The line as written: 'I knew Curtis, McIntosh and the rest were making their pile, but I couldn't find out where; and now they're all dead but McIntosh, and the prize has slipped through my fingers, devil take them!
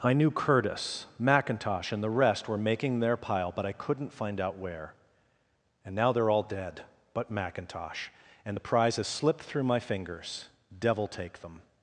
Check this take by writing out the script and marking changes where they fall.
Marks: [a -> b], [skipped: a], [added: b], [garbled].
'I knew Curtis, McIntosh and the rest were making their pile, but I couldn't find out where; and now they're all dead but McIntosh, and the prize has slipped through my fingers, devil take them!